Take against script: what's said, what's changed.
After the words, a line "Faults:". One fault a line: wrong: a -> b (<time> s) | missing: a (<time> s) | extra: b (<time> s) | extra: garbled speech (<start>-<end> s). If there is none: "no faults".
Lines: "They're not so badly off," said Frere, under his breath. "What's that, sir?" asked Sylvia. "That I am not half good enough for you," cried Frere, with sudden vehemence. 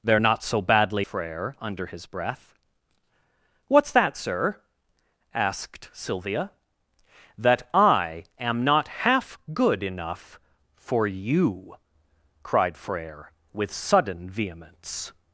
"They're not so badly Frere, under his breath. "What's that, sir?" asked Sylvia. "That I am not half good enough for you," cried Frere, with sudden vehemence.
Faults:
missing: off said (1.1 s)